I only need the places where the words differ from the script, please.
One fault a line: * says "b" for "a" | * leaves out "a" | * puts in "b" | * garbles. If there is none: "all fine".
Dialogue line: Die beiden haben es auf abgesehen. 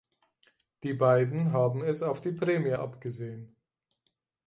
* puts in "die Prämie"